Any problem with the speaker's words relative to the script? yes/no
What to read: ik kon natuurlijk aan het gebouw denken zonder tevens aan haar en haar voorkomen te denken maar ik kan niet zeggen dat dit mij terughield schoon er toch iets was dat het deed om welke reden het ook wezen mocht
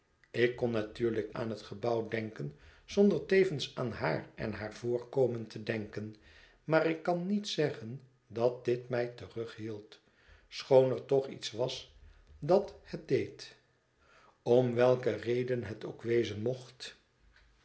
no